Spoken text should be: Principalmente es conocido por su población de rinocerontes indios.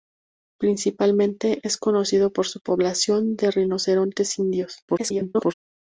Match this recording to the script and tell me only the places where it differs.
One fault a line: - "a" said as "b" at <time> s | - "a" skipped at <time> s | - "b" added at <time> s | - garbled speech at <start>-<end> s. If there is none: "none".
- garbled speech at 4.9-5.5 s